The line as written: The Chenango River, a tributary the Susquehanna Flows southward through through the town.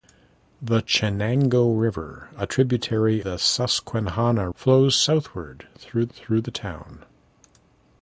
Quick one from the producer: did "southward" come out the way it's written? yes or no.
yes